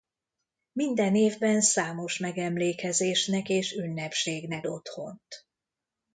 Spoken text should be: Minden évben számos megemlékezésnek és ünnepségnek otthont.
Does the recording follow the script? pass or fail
pass